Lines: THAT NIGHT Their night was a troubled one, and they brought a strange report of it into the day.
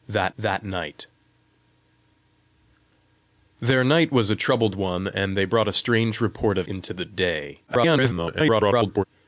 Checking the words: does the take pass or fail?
fail